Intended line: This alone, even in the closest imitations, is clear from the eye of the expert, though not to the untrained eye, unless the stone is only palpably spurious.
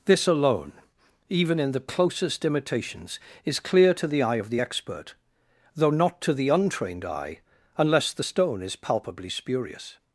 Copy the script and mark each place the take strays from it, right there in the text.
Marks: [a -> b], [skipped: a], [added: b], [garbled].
This alone, even in the closest imitations, is clear [from -> to] the eye of the expert, though not to the untrained eye, unless the stone is [skipped: only] palpably spurious.